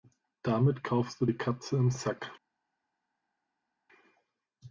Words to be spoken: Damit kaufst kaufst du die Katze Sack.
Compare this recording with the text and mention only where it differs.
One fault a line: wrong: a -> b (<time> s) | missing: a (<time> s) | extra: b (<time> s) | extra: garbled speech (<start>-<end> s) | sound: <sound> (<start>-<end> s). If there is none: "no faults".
missing: kaufst (1.2 s)
extra: im (1.8 s)